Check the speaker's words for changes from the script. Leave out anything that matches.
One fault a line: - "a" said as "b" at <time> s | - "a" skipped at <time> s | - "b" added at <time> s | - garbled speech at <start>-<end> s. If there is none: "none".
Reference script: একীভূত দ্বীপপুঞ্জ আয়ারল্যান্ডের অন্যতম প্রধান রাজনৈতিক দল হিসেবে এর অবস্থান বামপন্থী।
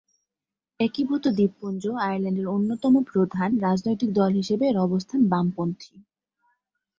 none